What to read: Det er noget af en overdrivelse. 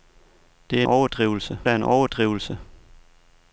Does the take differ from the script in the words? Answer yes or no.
yes